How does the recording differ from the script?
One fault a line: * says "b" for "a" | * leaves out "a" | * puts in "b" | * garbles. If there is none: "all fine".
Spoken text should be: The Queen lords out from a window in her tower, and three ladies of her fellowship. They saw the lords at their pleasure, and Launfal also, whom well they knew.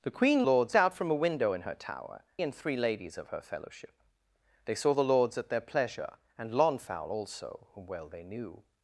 all fine